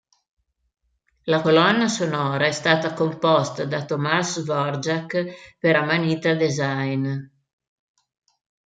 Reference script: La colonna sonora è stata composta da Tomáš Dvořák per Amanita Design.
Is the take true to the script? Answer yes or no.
yes